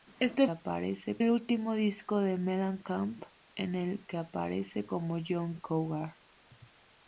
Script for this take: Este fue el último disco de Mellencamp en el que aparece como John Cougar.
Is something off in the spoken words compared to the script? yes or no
yes